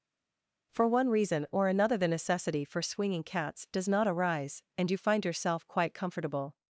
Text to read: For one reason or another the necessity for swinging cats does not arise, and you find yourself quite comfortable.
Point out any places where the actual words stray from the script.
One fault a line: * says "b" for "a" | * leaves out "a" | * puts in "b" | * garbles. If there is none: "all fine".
all fine